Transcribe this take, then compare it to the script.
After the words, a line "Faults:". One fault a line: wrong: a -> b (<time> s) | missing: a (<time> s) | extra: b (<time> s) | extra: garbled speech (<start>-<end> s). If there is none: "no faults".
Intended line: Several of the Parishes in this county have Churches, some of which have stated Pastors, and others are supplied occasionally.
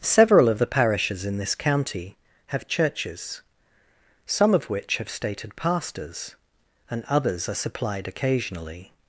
Several of the Parishes in this county have Churches, some of which have stated Pastors, and others are supplied occasionally.
Faults:
no faults